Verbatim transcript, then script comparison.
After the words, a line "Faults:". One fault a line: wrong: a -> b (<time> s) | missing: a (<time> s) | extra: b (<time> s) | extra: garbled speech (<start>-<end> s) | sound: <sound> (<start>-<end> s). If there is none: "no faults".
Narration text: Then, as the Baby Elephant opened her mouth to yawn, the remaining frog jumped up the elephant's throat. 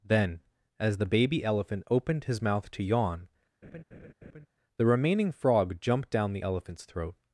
Then, as the Baby Elephant opened his mouth to yawn, the remaining frog jumped down the elephant's throat.
Faults:
wrong: her -> his (2.2 s)
sound: laugh (3.6-4.5 s)
wrong: up -> down (6.1 s)